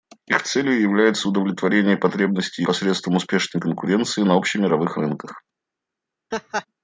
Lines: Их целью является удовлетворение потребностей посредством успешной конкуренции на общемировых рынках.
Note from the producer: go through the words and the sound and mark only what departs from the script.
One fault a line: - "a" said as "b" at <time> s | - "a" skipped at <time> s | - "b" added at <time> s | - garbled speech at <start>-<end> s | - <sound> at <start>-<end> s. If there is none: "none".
- laugh at 6.3-6.7 s